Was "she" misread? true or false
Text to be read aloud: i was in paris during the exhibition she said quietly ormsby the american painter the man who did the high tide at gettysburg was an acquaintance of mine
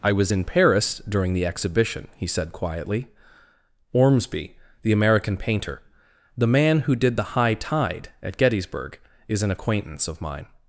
true